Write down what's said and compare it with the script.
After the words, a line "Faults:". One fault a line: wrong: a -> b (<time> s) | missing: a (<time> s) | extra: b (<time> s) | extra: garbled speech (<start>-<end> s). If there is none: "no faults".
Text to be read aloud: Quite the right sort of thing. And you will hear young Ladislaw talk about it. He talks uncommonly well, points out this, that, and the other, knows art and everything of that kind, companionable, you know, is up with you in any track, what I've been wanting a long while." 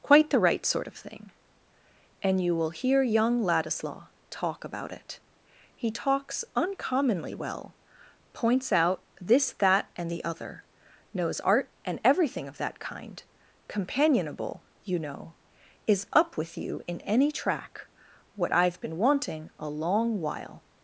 Quite the right sort of thing. And you will hear young Ladislaw talk about it. He talks uncommonly well, points out this, that, and the other, knows art and everything of that kind, companionable, you know, is up with you in any track, what I've been wanting a long while."
Faults:
no faults